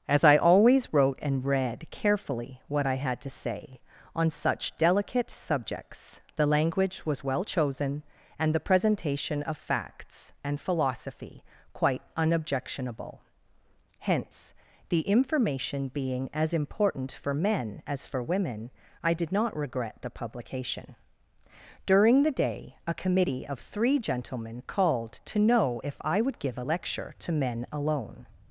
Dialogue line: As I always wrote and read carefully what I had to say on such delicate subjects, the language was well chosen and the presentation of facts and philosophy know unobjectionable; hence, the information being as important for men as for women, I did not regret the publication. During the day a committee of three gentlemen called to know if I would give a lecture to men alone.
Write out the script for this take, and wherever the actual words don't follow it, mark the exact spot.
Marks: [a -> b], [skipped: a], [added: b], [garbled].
As I always wrote and read carefully what I had to say on such delicate subjects, the language was well chosen and the presentation of facts and philosophy [know -> quite] unobjectionable; hence, the information being as important for men as for women, I did not regret the publication. During the day a committee of three gentlemen called to know if I would give a lecture to men alone.